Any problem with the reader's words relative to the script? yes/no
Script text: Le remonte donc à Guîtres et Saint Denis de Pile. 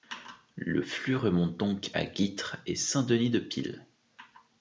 yes